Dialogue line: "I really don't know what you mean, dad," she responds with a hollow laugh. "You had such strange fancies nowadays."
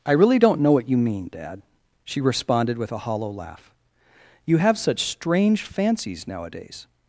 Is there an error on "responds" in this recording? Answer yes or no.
yes